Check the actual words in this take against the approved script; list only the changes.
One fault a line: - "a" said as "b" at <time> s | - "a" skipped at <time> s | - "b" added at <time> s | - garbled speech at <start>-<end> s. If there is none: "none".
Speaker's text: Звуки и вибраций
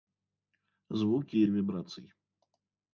none